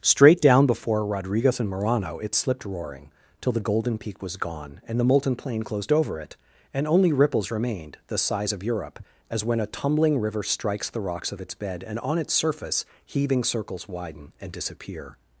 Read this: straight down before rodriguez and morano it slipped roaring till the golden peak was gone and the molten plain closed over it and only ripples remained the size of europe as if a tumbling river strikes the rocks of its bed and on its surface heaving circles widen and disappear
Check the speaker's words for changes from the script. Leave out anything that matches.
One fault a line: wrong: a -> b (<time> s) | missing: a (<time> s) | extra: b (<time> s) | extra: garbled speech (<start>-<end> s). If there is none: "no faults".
wrong: if -> when (9.4 s)